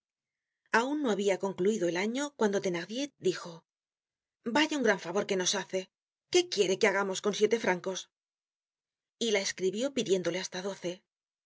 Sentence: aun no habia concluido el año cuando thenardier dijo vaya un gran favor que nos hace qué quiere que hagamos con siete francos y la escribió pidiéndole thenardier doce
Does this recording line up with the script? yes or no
no